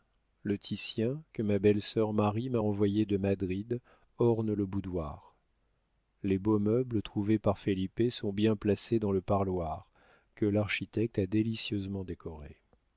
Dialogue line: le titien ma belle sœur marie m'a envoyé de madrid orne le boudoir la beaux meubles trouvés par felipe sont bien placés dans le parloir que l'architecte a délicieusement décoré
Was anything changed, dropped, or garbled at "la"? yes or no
yes